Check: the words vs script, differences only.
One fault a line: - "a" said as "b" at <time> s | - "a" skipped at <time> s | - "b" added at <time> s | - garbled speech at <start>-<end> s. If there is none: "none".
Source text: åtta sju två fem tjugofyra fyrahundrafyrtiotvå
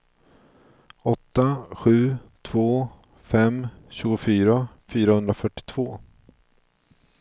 none